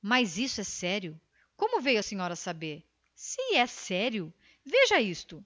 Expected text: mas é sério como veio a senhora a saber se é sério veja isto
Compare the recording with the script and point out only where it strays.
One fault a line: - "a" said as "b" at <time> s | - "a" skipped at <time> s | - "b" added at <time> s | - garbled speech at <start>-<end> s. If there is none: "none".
- "isso" added at 0.4 s